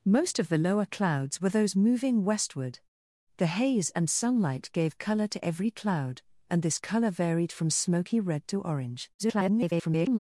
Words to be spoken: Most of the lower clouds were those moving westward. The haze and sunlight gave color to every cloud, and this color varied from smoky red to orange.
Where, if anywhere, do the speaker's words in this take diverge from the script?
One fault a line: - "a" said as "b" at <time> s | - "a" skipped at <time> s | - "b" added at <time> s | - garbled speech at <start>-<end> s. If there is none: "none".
- garbled speech at 9.2-10.2 s